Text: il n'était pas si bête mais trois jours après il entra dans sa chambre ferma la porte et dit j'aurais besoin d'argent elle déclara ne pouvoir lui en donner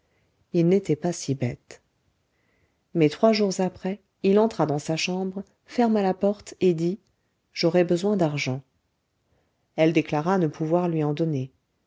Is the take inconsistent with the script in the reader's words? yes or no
no